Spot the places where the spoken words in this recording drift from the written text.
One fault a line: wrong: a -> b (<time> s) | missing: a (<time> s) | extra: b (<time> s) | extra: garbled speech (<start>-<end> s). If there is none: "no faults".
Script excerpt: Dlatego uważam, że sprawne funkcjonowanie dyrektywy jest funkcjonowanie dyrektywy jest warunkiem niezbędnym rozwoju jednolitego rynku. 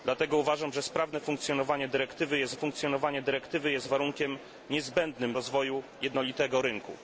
no faults